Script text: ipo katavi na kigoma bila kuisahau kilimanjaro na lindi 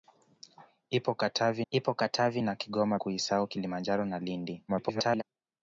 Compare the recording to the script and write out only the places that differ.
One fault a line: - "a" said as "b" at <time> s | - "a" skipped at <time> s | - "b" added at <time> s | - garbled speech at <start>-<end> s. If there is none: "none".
- "ipo katavi" added at 1.7 s
- "bila" skipped at 3.0 s
- garbled speech at 4.7-5.2 s